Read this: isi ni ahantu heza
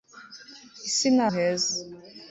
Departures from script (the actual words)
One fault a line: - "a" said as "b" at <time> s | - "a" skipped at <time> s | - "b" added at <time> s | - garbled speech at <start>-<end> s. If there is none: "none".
- "ahantu" skipped at 1.2 s